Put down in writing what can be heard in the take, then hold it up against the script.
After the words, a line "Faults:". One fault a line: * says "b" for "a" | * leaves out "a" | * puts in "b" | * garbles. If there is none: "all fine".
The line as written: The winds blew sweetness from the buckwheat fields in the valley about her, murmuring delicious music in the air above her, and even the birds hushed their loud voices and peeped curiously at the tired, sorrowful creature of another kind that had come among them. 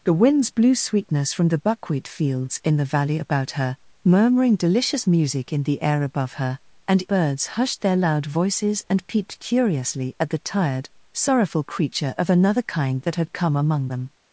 The winds blew sweetness from the buckwheat fields in the valley about her, murmuring delicious music in the air above her, and birds hushed their loud voices and peeped curiously at the tired, sorrowful creature of another kind that had come among them.
Faults:
* leaves out "even the"